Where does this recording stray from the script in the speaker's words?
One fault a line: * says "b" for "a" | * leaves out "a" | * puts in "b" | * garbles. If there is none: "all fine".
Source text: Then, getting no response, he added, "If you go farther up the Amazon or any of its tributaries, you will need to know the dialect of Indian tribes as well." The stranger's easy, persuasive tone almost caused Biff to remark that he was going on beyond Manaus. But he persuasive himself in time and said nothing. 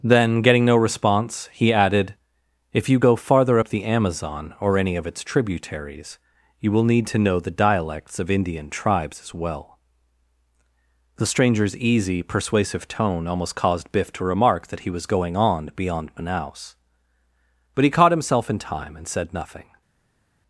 * says "dialects" for "dialect"
* says "caught" for "persuasive"